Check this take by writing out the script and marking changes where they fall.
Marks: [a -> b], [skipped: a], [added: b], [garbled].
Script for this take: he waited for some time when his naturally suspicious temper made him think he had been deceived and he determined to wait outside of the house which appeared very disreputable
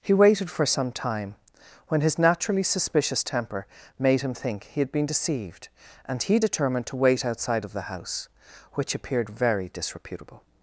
he waited for some time when his naturally suspicious temper made him think he had been deceived and he determined to wait outside of the house which appeared very disreputable